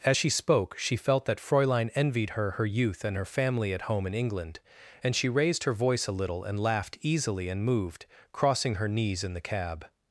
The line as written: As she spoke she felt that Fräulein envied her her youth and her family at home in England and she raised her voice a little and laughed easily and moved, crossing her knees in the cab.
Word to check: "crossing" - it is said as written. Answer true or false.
true